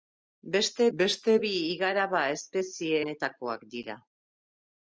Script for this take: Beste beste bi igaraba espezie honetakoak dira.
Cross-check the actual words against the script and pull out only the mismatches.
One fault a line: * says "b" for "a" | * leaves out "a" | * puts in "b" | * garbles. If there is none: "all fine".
all fine